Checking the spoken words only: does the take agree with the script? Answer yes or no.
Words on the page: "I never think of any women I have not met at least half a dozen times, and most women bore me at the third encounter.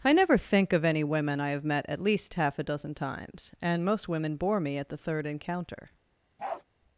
no